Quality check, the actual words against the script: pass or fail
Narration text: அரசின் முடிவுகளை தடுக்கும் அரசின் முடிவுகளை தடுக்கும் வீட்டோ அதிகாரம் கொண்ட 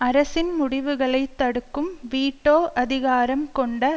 fail